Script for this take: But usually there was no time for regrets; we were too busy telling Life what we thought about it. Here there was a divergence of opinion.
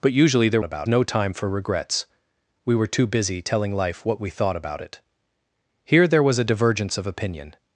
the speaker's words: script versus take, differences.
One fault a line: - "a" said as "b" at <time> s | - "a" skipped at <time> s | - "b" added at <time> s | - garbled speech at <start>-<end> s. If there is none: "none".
- "was" said as "about" at 0.6 s